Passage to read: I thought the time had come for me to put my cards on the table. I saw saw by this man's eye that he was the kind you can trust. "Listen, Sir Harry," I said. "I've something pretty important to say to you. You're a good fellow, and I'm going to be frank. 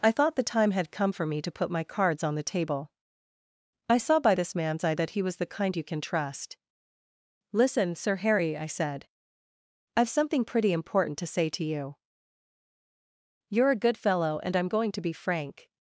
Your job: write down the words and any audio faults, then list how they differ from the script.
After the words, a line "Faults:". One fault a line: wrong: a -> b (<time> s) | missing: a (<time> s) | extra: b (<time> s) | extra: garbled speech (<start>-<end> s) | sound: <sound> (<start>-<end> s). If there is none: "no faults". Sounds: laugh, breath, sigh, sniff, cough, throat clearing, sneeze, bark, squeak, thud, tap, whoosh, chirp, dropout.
I thought the time had come for me to put my cards on the table. I saw by this man's eye that he was the kind you can trust. "Listen, Sir Harry," I said. "I've something pretty important to say to you. You're a good fellow, and I'm going to be frank.
Faults:
missing: saw (4.2 s)